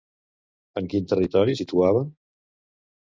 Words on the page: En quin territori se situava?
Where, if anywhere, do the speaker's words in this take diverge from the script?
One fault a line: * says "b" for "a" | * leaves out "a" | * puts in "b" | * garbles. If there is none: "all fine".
* leaves out "se"